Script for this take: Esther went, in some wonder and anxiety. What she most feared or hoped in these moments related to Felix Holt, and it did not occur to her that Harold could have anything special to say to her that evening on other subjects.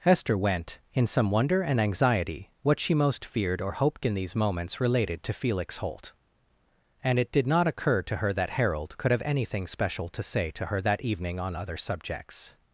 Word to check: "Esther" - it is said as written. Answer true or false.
false